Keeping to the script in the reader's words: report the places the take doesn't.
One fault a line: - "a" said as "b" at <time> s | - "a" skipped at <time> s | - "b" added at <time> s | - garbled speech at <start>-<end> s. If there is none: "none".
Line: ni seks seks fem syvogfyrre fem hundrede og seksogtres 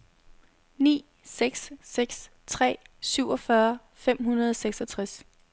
- "fem" said as "tre" at 2.5 s